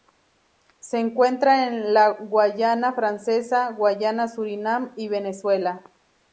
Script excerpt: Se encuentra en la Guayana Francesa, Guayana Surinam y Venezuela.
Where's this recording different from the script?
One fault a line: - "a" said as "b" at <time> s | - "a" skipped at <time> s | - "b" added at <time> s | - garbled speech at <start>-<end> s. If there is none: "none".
none